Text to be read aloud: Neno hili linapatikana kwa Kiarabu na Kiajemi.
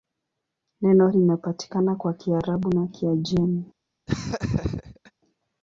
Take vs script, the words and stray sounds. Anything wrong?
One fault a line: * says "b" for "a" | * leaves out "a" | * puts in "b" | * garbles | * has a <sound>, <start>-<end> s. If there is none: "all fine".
* leaves out "hili"
* has a laugh, 4.1-5.1 s